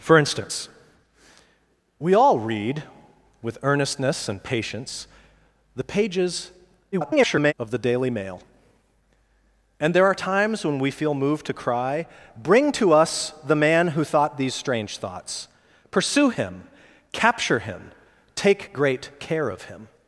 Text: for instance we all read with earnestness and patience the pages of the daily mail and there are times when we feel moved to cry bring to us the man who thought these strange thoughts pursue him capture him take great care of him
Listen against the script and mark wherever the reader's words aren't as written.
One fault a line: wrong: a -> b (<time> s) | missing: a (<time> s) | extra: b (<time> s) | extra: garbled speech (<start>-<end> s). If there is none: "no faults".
extra: garbled speech (6.9-7.5 s)